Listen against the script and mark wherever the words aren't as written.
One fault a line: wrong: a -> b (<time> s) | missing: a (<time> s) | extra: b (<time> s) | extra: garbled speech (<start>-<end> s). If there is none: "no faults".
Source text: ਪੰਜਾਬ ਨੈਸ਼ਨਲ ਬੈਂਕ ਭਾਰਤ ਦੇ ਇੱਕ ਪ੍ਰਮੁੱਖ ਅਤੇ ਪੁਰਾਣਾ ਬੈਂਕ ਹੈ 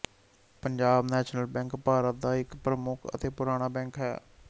wrong: ਦੇ -> ਦਾ (2.2 s)